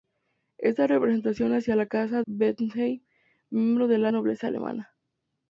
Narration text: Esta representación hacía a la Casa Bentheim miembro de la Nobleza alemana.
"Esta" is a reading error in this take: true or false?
false